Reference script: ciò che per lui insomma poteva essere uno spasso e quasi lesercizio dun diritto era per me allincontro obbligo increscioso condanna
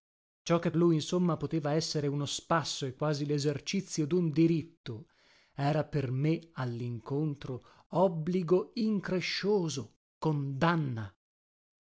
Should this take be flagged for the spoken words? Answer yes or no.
yes